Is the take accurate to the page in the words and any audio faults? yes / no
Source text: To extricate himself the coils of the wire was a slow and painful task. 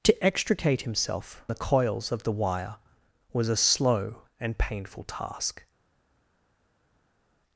yes